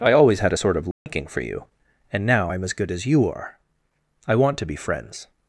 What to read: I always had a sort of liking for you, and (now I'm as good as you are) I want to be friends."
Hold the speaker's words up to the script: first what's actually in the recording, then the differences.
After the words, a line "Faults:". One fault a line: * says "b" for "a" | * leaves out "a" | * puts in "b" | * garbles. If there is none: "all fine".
I always had a sort of liking for you, and (now I'm as good as you are) I want to be friends."
Faults:
all fine